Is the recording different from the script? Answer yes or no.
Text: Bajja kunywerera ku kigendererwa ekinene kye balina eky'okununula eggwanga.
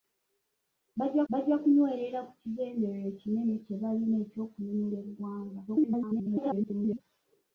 yes